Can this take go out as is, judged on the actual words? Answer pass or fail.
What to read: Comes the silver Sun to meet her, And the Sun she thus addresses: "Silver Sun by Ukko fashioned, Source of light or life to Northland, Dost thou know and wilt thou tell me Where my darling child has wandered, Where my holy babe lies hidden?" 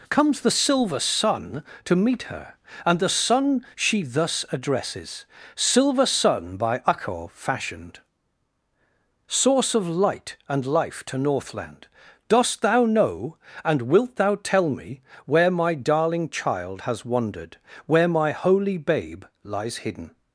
fail